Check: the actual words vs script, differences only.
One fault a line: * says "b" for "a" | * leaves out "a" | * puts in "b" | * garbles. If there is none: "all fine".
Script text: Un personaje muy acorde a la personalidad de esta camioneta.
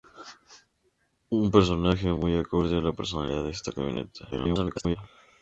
* garbles